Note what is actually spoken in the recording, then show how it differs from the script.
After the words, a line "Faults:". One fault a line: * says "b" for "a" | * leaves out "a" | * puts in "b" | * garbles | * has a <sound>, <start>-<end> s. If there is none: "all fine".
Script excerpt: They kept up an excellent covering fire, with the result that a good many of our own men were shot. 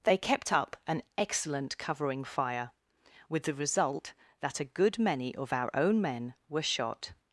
They kept up an excellent covering fire, with the result that a good many of our own men were shot.
Faults:
all fine